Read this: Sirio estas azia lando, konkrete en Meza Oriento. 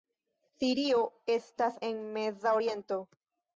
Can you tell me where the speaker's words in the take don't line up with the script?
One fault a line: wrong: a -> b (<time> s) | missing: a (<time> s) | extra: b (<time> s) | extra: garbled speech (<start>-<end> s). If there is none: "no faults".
missing: azia lando konkrete (1.8 s)